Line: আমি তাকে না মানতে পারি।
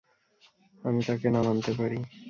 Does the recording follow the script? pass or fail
pass